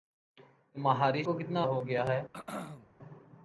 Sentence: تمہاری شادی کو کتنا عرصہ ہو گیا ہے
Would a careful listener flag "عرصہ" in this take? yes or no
yes